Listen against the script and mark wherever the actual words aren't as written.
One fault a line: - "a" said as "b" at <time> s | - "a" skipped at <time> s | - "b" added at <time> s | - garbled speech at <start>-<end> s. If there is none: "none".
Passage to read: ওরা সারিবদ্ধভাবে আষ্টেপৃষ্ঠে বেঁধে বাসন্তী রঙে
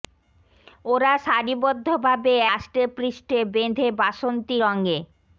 none